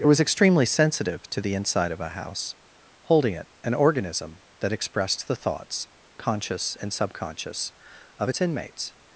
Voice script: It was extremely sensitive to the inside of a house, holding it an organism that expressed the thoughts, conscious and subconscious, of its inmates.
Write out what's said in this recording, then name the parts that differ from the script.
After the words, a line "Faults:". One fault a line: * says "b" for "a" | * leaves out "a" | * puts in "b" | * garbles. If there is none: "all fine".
It was extremely sensitive to the inside of a house, holding it an organism that expressed the thoughts, conscious and subconscious, of its inmates.
Faults:
all fine